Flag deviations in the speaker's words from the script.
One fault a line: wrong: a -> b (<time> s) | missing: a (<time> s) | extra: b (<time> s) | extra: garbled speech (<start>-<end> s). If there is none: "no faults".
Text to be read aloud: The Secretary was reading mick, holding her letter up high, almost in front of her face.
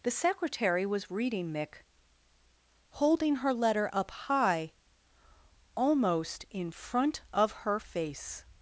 no faults